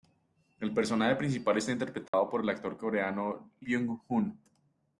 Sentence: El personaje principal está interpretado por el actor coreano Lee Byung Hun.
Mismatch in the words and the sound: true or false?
true